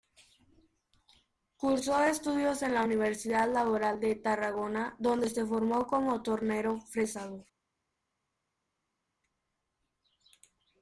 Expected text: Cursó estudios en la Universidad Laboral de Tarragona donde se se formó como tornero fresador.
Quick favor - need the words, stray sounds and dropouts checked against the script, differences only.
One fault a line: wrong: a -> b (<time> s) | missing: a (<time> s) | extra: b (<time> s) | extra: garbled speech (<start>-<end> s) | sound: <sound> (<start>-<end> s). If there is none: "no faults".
missing: se (5.5 s)